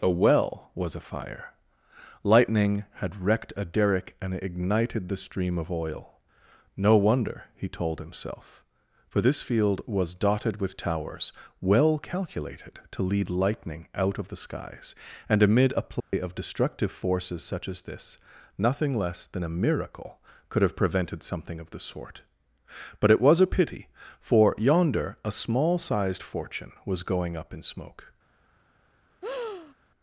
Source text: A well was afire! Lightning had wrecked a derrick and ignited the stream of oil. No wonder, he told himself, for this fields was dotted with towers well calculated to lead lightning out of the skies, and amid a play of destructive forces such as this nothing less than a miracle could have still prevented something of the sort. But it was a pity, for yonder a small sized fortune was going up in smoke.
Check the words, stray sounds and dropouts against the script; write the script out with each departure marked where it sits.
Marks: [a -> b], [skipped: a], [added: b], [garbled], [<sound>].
A well was afire! Lightning had wrecked a derrick and ignited the stream of oil. No wonder, he told himself, for this [fields -> field] was dotted with towers well calculated to lead lightning out of the skies, and amid a play [dropout] of destructive forces such as this nothing less than a miracle could have [skipped: still] prevented something of the sort. But it was a pity, for yonder a small sized fortune was going up in smoke. [breath]